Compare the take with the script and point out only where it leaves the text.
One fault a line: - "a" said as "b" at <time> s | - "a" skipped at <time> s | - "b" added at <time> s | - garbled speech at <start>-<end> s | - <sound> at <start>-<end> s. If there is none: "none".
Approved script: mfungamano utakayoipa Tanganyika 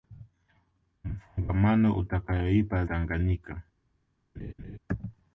- laugh at 4.3-4.8 s